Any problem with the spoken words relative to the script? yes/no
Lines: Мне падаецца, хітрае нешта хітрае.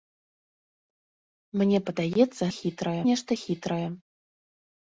no